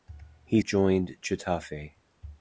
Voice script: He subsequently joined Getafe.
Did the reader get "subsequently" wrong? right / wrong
wrong